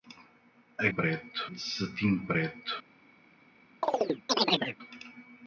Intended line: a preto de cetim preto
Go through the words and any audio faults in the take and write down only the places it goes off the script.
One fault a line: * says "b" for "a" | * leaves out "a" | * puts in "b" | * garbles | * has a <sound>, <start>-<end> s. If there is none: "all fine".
* has a chirp, 3.8-4.8 s